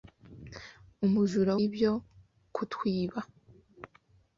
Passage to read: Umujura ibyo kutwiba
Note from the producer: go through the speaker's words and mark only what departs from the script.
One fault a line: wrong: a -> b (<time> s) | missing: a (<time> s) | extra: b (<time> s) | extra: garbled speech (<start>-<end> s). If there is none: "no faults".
no faults